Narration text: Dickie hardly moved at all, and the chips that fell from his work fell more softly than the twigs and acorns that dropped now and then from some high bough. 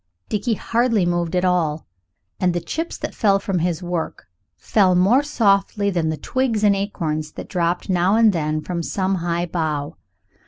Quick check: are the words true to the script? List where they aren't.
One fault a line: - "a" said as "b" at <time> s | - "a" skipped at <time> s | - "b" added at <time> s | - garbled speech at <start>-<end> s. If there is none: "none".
none